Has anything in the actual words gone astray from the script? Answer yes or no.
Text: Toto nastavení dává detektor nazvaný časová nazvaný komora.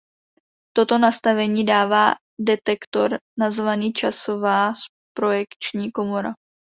yes